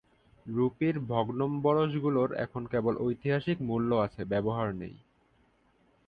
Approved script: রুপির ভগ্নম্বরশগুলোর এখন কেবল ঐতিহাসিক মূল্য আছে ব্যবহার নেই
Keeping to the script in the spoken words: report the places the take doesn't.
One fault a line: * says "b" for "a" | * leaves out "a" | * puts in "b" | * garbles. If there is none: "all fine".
all fine